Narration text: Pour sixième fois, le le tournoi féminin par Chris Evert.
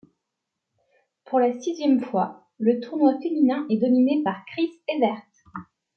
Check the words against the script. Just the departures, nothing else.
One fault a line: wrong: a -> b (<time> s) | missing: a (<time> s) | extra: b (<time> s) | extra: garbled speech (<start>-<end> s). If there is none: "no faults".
extra: la (1.4 s)
missing: le (2.8 s)
extra: est dominé (3.7 s)